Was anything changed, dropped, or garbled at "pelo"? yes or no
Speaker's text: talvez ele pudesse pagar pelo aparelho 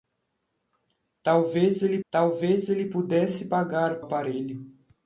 yes